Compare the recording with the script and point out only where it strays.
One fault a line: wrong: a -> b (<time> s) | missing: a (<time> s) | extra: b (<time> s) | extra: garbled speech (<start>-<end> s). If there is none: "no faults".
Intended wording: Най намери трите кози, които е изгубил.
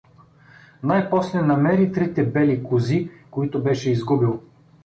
extra: после (1.1 s)
extra: бели (2.2 s)
wrong: е -> беше (3.6 s)